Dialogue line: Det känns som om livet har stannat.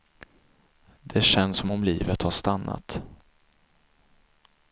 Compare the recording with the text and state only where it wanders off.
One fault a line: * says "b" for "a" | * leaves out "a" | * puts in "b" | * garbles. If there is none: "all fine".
all fine